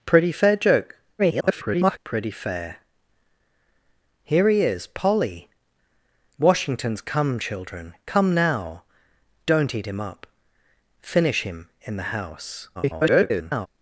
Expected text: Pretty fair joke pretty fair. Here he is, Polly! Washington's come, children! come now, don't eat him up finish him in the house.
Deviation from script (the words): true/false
true